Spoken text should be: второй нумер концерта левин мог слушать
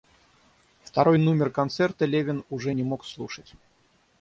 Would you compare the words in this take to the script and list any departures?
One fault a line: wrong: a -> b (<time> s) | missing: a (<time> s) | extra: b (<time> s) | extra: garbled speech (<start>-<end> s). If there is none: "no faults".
extra: уже не (2.5 s)